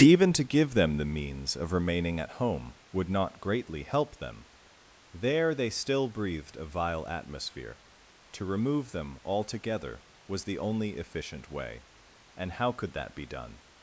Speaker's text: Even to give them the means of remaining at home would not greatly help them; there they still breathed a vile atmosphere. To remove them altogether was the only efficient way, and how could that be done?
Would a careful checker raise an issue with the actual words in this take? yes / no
no